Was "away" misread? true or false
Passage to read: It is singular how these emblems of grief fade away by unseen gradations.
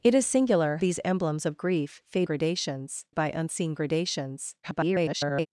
true